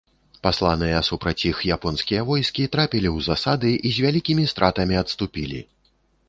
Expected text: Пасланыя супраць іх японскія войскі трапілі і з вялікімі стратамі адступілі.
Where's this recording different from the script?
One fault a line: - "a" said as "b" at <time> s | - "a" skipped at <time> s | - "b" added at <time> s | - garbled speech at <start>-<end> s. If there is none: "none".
- "ў засады" added at 3.1 s